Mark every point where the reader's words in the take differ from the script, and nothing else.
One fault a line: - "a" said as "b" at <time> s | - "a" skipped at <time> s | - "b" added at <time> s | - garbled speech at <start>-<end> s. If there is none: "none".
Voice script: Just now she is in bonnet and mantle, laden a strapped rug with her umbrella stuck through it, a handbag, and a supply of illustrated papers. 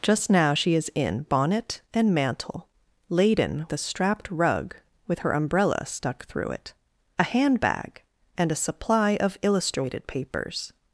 none